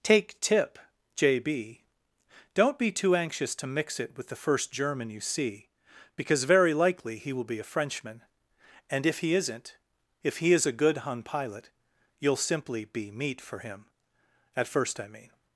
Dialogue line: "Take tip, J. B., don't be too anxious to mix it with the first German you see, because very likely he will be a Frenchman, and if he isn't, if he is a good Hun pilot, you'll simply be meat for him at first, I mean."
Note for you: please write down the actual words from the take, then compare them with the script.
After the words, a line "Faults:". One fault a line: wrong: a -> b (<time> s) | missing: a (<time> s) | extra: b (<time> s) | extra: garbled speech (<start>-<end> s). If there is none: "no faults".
"Take tip, J. B., don't be too anxious to mix it with the first German you see, because very likely he will be a Frenchman, and if he isn't, if he is a good Hun pilot, you'll simply be meat for him at first, I mean."
Faults:
no faults